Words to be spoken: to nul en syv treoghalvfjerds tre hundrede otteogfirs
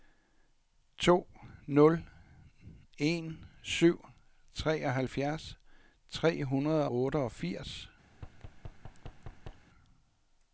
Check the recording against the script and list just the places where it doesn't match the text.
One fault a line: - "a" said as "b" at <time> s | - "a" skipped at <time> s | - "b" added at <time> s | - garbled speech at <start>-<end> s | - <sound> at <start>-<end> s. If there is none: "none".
- thud at 8.1-9.7 s